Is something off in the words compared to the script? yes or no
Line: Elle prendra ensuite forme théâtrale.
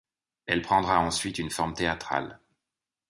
yes